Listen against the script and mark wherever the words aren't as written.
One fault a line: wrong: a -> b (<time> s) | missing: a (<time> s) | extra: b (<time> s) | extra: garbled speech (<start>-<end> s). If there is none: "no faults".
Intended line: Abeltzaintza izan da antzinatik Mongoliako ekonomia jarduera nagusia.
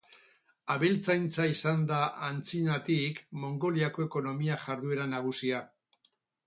no faults